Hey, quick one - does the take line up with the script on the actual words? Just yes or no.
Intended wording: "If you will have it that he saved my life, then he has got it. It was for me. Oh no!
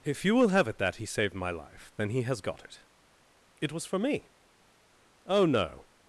yes